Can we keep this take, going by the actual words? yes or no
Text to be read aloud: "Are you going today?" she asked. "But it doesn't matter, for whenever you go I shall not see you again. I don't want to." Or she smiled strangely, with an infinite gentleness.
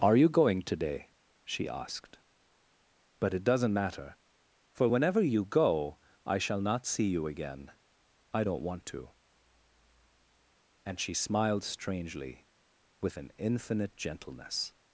no